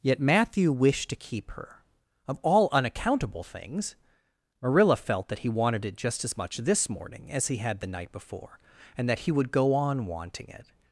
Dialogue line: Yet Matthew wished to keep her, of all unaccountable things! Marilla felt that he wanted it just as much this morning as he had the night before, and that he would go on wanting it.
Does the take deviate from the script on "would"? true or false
false